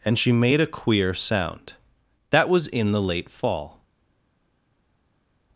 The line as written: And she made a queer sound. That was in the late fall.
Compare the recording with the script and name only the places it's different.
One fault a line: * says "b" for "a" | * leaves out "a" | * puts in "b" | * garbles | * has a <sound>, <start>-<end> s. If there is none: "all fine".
all fine